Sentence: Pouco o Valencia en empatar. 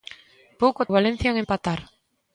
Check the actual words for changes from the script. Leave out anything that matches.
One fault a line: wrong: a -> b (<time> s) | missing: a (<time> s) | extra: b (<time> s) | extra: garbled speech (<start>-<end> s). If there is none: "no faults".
no faults